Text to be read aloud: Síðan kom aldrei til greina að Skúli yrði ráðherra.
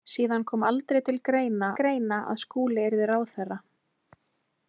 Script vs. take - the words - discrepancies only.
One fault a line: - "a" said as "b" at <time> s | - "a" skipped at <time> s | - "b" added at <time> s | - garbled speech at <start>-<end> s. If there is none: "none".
- "greina" added at 1.8 s